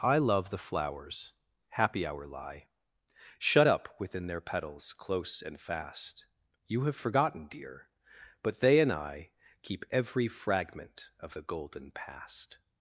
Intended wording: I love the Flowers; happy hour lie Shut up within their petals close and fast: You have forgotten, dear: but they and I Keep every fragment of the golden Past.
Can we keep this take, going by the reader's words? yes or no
yes